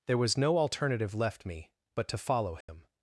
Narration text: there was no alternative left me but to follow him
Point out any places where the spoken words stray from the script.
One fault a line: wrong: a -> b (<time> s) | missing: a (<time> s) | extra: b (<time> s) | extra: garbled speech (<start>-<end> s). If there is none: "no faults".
no faults